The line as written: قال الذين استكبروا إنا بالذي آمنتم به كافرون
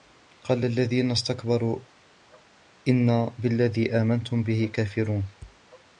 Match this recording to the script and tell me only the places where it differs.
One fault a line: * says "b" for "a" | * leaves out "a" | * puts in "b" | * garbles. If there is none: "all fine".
all fine